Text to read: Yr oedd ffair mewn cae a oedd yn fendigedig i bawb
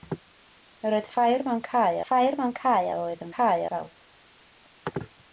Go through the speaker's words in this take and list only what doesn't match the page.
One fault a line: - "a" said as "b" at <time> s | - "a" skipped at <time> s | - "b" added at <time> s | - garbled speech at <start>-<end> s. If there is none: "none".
- "ffair mewn cae" added at 2.1 s
- "fendigedig" said as "cae" at 3.4 s